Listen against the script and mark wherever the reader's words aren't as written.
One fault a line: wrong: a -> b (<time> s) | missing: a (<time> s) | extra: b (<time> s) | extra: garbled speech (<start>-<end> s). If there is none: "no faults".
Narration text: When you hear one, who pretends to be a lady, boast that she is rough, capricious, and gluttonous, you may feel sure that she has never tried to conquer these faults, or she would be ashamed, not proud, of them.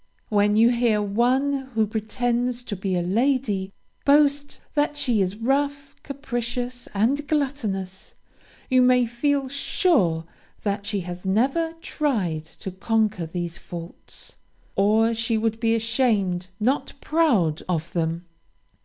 no faults